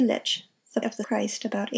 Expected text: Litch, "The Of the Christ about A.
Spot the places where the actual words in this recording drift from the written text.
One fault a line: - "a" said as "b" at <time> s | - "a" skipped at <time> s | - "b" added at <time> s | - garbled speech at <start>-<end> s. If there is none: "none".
none